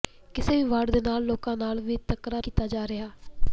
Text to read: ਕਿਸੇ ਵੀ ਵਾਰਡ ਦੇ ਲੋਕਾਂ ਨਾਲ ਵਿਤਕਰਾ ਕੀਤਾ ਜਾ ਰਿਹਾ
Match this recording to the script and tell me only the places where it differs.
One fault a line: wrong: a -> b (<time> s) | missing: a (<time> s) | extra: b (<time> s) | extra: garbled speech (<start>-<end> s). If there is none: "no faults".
no faults